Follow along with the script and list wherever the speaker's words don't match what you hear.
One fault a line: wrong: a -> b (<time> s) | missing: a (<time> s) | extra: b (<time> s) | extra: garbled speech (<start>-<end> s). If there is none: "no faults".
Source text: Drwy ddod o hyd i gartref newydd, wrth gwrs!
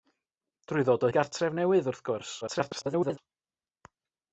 missing: hyd (1.1 s)
extra: garbled speech (2.4-3.2 s)